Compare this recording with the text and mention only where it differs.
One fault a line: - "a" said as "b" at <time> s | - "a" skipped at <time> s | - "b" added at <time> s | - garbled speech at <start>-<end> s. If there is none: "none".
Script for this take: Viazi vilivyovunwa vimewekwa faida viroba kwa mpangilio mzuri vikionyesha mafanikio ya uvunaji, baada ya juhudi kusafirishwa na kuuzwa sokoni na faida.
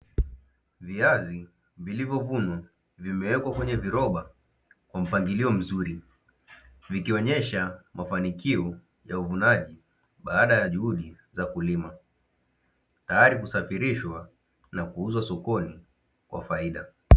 - "faida" said as "kwenye" at 3.5 s
- "za kulima tayari" added at 11.3 s
- "na" said as "kwa" at 16.3 s